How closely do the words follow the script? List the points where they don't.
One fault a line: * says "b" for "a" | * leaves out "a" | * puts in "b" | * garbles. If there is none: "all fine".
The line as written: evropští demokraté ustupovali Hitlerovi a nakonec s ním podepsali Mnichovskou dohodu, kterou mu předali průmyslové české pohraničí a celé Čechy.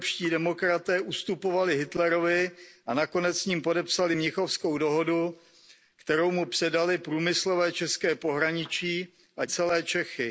all fine